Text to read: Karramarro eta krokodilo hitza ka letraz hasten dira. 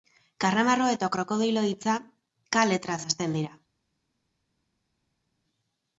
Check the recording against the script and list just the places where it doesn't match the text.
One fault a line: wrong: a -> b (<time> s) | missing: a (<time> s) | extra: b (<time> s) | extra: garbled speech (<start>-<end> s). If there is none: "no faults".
no faults